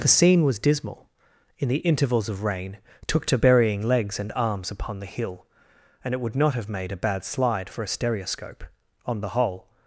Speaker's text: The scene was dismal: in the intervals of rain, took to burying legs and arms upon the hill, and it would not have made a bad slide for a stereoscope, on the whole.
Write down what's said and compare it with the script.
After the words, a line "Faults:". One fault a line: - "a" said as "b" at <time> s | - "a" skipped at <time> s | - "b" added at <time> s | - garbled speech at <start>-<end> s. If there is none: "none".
The scene was dismal: in the intervals of rain, took to burying legs and arms upon the hill, and it would not have made a bad slide for a stereoscope, on the whole.
Faults:
none